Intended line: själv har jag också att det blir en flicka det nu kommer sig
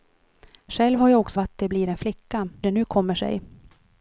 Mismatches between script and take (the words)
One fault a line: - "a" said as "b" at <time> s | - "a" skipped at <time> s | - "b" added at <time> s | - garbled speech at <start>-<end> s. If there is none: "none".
none